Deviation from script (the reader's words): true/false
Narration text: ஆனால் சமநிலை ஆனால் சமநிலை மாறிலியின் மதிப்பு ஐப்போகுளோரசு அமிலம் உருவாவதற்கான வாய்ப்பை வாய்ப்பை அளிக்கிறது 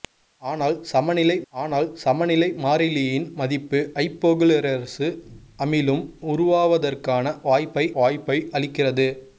false